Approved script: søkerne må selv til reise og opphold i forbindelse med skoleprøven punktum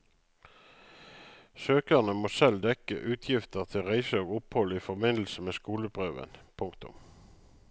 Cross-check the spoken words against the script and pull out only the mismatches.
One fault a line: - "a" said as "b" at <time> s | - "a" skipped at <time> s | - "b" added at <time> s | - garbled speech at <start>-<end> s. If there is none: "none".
- "dekke utgifter" added at 2.6 s